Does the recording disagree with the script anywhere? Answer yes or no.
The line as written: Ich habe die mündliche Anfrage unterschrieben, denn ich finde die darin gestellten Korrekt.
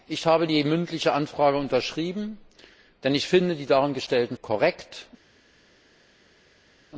no